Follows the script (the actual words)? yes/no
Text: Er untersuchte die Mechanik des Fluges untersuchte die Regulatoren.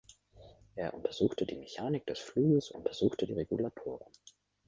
yes